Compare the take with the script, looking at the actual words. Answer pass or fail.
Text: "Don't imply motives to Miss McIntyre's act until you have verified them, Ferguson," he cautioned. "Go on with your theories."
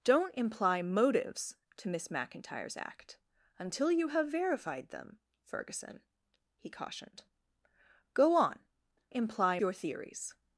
fail